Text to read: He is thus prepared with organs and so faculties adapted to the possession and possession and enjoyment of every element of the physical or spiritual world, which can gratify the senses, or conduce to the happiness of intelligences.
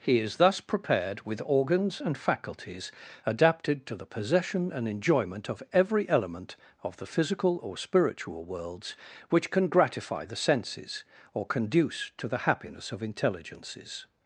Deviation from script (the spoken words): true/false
true